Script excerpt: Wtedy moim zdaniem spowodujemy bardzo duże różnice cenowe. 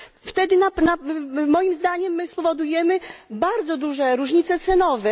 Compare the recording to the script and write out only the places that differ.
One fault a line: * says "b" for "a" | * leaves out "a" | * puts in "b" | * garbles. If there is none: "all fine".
all fine